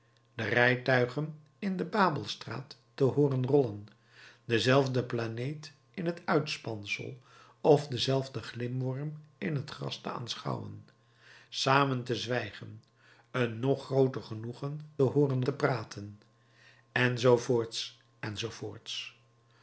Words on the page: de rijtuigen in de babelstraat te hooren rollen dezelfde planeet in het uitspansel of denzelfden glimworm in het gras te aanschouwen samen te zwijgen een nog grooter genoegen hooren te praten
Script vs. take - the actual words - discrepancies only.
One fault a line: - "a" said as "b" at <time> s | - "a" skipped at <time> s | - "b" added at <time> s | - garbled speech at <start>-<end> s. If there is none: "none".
none